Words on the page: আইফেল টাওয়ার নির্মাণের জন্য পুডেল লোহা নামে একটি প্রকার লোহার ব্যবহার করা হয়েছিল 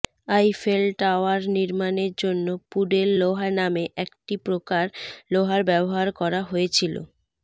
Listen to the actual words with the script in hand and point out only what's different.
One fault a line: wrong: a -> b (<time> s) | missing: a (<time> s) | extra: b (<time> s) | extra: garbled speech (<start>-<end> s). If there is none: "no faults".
no faults